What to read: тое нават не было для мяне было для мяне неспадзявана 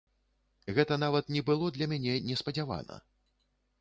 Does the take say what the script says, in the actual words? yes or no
no